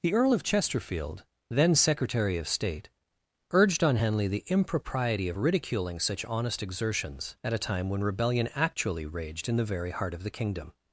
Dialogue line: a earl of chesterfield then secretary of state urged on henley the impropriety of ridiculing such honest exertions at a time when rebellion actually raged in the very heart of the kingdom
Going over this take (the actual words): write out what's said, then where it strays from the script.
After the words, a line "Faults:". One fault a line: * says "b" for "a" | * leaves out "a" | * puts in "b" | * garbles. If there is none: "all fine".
the earl of chesterfield then secretary of state urged on henley the impropriety of ridiculing such honest exertions at a time when rebellion actually raged in the very heart of the kingdom
Faults:
* says "the" for "a"